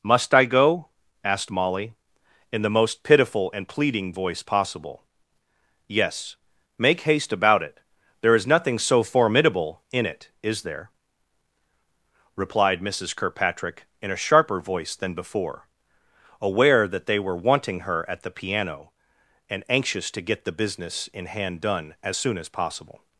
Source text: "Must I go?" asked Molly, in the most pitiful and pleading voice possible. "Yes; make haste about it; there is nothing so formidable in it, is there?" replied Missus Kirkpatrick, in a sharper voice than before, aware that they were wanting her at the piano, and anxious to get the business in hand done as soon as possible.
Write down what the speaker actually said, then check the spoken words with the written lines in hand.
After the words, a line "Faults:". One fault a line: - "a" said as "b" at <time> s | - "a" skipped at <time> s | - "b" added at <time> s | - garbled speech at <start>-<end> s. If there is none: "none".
"Must I go?" asked Molly, in the most pitiful and pleading voice possible. "Yes; make haste about it; there is nothing so formidable in it, is there?" replied Missus Kirkpatrick, in a sharper voice than before, aware that they were wanting her at the piano, and anxious to get the business in hand done as soon as possible.
Faults:
none